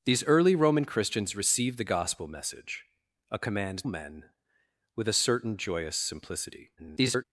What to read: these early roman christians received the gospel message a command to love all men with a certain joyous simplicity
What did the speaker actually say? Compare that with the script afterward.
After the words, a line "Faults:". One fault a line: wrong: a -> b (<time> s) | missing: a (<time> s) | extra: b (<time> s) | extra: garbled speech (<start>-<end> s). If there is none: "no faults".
these early roman christians received the gospel message a command men with a certain joyous simplicity [garbled]
Faults:
missing: to love all (3.9 s)
extra: garbled speech (6.8-7.2 s)